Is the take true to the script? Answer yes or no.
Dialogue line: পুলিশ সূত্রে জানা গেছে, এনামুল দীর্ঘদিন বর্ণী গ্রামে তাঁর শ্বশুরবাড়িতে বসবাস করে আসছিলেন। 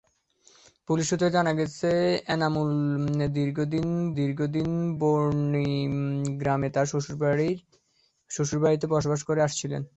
no